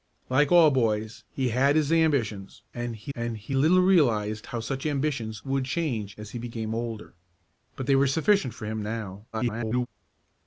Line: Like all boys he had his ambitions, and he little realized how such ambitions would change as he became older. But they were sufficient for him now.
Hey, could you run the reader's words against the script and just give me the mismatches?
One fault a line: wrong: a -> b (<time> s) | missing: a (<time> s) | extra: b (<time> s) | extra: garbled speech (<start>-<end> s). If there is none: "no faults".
extra: and he (3.1 s)
extra: garbled speech (9.3-9.9 s)